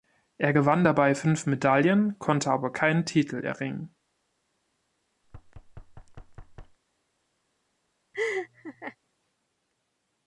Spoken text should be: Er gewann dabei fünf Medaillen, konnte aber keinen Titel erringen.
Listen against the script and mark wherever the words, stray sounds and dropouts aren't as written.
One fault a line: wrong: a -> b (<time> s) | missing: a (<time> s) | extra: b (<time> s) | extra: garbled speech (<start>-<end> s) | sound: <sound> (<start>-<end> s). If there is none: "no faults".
sound: thud (5.2-6.8 s)
sound: laugh (8.1-9.0 s)